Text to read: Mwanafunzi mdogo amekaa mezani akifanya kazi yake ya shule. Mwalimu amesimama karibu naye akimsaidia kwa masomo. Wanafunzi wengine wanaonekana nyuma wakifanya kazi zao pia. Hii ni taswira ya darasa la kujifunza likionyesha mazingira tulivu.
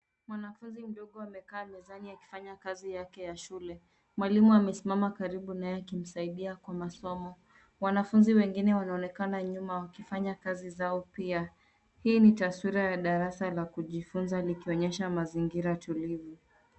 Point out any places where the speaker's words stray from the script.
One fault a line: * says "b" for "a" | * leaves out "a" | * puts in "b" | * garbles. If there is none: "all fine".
all fine